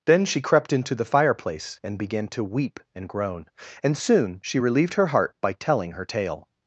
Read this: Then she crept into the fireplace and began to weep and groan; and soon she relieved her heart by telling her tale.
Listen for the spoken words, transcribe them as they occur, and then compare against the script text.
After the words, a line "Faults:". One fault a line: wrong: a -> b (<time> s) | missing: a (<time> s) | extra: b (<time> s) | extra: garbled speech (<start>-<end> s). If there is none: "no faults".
Then she crept into the fireplace and began to weep and groan; and soon she relieved her heart by telling her tale.
Faults:
no faults